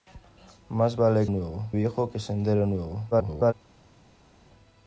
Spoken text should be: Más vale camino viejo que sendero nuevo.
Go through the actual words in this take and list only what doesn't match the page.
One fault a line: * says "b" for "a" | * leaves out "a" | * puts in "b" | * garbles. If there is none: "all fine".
* says "nuevo" for "camino"
* garbles